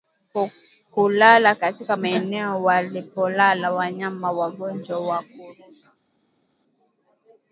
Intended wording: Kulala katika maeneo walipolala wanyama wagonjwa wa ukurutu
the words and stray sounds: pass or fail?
pass